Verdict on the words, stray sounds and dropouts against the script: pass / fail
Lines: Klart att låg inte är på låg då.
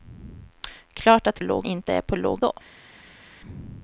pass